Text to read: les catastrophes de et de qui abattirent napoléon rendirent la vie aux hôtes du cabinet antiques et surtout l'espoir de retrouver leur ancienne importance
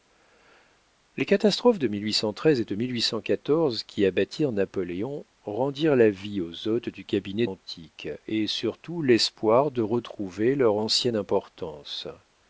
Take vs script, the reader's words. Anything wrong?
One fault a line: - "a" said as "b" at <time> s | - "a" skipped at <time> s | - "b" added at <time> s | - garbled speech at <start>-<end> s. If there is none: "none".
none